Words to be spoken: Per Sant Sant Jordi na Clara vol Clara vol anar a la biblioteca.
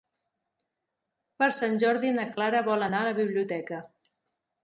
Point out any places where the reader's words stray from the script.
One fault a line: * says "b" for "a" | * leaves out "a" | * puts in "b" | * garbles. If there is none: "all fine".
* leaves out "Sant"
* leaves out "Clara vol"